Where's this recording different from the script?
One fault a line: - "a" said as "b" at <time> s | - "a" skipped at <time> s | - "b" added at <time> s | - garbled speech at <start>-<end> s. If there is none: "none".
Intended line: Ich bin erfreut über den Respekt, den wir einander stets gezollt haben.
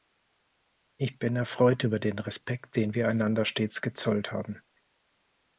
none